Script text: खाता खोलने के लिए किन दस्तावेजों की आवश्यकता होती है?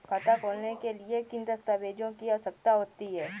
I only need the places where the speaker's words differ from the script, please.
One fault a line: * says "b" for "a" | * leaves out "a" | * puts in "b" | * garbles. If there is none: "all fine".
all fine